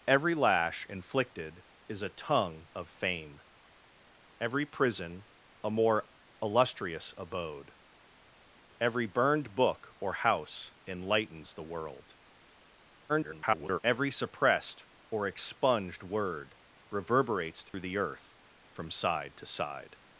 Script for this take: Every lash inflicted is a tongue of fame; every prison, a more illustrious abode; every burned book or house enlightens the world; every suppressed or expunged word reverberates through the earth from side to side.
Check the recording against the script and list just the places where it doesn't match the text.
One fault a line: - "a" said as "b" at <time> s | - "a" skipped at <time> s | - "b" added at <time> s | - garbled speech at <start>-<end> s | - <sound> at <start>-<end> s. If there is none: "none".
- garbled speech at 13.1-13.8 s
- dropout at 17.7-17.7 s